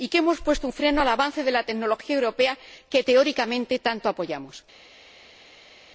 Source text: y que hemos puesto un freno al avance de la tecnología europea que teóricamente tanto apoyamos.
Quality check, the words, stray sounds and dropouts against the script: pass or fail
pass